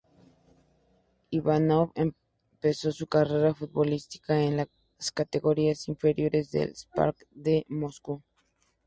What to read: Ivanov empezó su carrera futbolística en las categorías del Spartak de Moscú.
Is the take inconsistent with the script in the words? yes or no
yes